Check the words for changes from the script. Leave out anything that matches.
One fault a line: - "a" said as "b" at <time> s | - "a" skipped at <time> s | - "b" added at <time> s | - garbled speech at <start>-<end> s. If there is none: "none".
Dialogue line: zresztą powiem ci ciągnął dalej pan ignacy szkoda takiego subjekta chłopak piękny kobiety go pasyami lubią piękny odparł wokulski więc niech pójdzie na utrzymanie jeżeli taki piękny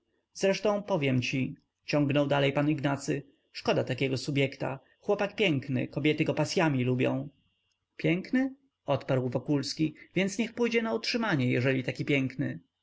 none